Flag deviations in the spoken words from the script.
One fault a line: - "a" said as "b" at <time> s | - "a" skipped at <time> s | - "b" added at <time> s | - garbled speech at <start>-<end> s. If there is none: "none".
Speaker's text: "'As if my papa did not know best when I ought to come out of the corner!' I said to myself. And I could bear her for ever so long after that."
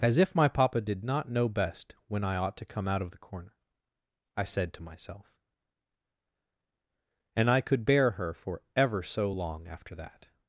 none